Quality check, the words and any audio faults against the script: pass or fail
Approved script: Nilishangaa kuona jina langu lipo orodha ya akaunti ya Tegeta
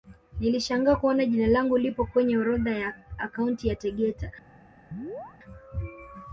fail